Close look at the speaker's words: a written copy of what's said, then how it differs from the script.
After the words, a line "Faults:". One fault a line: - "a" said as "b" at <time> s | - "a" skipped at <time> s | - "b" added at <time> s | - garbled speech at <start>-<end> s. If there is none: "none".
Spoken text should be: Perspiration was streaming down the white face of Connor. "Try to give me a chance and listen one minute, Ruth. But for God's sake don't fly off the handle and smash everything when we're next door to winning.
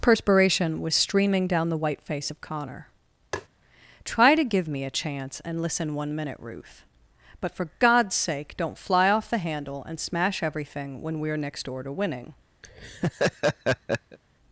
Perspiration was streaming down the white face of Connor. "Try to give me a chance and listen one minute, Ruth. But for God's sake don't fly off the handle and smash everything when we're next door to winning.
Faults:
none